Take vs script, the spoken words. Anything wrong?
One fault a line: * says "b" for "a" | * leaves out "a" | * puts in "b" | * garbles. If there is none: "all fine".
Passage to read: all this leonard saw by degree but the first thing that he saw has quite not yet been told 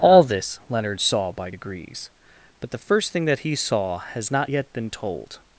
* says "degrees" for "degree"
* leaves out "quite"